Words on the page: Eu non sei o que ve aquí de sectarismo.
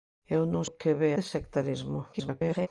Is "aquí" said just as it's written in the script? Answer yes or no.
no